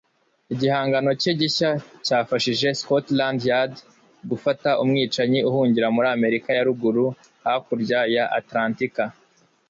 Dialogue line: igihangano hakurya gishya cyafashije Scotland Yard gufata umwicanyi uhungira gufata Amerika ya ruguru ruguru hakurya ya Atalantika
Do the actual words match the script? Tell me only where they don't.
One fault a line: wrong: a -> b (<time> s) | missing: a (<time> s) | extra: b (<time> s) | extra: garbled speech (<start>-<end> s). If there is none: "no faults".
wrong: hakurya -> cye (1.2 s)
wrong: gufata -> muri (6.0 s)
missing: ruguru (7.0 s)